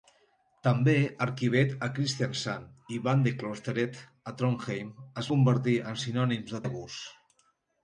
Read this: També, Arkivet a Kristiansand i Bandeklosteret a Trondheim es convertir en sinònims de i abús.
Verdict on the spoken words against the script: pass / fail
pass